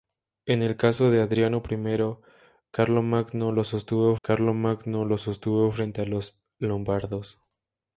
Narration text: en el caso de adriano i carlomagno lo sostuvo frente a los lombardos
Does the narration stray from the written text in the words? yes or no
yes